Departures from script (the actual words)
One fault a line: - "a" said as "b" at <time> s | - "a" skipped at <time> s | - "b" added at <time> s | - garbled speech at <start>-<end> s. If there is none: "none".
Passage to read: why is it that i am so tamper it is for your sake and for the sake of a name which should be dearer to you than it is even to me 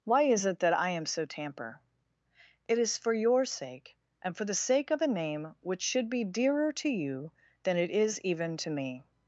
none